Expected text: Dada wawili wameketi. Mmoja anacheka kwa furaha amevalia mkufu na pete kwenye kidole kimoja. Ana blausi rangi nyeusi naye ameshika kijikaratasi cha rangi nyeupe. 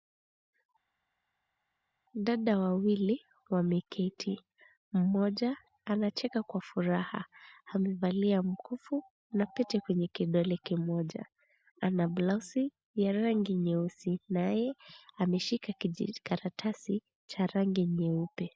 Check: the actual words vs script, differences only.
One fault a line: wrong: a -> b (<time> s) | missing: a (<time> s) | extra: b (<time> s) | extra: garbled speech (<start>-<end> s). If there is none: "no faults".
extra: ya (12.9 s)